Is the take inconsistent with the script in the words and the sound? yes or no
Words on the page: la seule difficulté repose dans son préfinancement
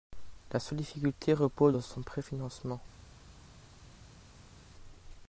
no